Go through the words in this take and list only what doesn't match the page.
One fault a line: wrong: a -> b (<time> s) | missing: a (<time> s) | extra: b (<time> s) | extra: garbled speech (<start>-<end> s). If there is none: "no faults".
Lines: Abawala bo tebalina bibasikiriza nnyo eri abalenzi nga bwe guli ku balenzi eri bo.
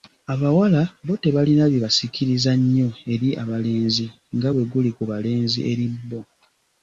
no faults